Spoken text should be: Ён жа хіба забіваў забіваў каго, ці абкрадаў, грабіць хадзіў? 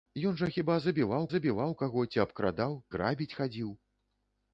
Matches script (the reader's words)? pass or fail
pass